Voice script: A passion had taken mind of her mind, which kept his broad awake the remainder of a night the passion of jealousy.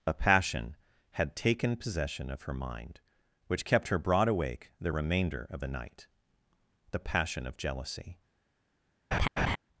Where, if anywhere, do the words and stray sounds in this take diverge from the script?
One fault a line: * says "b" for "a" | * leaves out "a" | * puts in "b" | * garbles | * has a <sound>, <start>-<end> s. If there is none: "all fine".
* says "possession" for "mind"
* says "her" for "his"
* says "the" for "a"
* has a laugh, 9.1-9.6 s